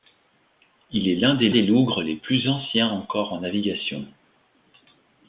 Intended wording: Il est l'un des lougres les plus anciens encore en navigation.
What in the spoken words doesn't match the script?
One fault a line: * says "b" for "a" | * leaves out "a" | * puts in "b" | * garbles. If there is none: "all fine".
* puts in "des"